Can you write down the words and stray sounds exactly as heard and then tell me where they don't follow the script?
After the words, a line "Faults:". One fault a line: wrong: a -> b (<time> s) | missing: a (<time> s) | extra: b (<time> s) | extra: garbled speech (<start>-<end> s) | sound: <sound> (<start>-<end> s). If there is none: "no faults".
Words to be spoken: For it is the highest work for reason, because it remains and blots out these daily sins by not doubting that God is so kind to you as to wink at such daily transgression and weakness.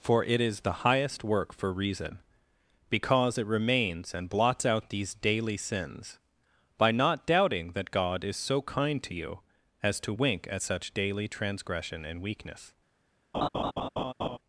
For it is the highest work for reason, because it remains and blots out these daily sins by not doubting that God is so kind to you as to wink at such daily transgression and weakness.
Faults:
sound: laugh (13.3-14.4 s)